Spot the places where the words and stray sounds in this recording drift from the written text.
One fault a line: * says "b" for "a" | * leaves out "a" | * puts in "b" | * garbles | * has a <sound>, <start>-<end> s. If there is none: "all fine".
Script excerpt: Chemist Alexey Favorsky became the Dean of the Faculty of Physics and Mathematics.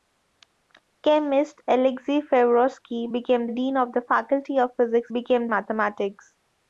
* leaves out "the"
* says "became" for "and"